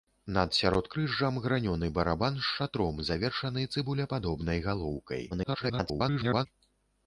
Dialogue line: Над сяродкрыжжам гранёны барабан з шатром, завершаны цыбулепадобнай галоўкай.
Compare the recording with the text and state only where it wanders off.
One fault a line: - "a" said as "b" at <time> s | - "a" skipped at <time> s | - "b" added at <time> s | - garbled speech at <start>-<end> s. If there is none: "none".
- garbled speech at 5.3-6.5 s